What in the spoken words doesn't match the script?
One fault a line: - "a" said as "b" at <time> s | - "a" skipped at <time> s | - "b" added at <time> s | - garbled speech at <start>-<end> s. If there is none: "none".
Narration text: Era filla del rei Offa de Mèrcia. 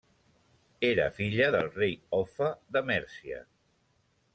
none